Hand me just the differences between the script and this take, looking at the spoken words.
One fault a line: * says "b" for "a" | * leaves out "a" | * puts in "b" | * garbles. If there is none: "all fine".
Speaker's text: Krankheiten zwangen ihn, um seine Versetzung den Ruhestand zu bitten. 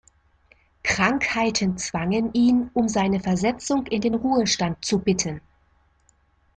* puts in "in"